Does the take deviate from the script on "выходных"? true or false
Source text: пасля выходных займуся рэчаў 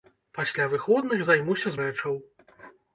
false